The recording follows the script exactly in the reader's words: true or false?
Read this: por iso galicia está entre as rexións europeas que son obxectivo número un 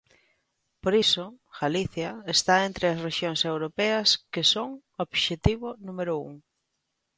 true